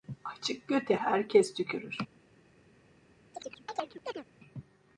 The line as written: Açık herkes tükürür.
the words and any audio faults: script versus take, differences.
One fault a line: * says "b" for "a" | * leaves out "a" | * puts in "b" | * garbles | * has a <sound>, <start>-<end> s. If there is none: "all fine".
* puts in "göte"
* has a chirp, 3.3-4.2 s